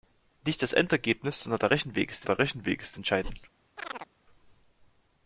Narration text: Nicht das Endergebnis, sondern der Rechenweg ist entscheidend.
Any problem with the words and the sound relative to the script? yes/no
yes